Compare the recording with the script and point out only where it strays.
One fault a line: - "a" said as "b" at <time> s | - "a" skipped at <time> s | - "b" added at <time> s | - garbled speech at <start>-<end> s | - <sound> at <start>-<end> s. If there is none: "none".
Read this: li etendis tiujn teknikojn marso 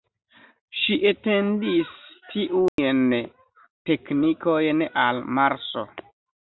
- "li" said as "ŝi" at 0.8 s
- dropout at 2.7-2.8 s
- "al" added at 5.1 s